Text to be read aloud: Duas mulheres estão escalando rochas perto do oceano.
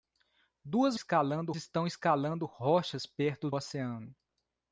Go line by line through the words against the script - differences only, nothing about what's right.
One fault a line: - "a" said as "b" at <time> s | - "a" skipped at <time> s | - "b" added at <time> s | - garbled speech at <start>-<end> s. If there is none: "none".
- "mulheres" said as "escalando" at 0.9 s
- "do" skipped at 3.5 s